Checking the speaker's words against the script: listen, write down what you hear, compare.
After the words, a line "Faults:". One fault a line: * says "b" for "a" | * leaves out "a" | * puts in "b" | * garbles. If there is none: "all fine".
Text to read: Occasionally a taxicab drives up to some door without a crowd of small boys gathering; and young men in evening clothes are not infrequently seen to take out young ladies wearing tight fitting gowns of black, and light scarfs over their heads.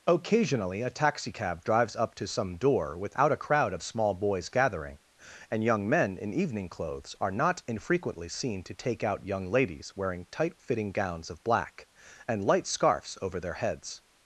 Occasionally a taxicab drives up to some door without a crowd of small boys gathering; and young men in evening clothes are not infrequently seen to take out young ladies wearing tight fitting gowns of black, and light scarfs over their heads.
Faults:
all fine